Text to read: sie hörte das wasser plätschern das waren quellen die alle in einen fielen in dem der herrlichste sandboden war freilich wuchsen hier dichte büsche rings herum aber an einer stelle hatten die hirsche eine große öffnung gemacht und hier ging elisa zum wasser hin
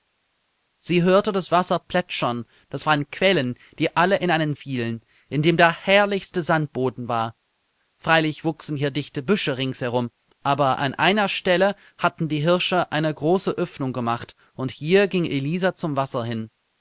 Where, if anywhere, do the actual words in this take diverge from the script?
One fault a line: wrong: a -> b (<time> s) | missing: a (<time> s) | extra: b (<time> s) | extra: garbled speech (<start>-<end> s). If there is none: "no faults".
no faults